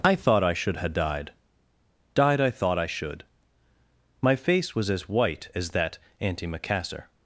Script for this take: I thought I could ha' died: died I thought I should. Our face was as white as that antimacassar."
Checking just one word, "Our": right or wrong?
wrong